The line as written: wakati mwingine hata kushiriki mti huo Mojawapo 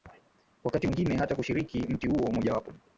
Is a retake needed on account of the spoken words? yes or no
no